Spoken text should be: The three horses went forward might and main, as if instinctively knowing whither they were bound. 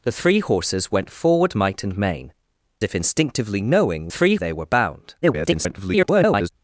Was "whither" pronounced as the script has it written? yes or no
no